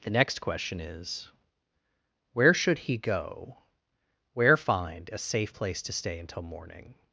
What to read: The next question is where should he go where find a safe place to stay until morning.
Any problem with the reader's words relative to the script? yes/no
no